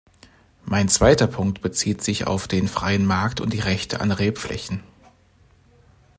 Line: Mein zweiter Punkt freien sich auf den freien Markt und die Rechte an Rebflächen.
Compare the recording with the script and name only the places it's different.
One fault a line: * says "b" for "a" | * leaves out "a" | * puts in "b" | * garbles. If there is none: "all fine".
* says "bezieht" for "freien"